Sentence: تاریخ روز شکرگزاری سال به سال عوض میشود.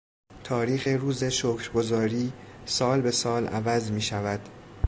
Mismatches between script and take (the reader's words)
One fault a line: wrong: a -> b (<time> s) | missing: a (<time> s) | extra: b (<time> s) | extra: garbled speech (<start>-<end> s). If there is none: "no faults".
no faults